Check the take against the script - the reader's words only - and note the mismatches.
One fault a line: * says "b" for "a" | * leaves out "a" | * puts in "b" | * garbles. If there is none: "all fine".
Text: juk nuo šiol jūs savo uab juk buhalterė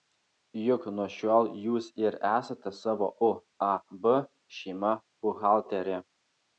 * puts in "ir esate"
* says "šeima" for "juk"